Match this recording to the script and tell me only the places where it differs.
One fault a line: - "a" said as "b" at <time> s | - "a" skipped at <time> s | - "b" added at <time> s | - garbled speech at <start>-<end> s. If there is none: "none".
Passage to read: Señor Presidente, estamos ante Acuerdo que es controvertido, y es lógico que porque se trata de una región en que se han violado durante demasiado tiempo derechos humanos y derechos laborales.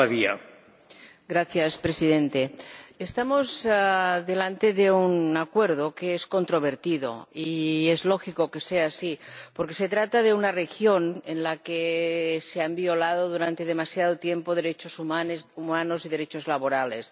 - "un" added at 4.9 s
- "sea así" added at 8.6 s
- "la" added at 11.4 s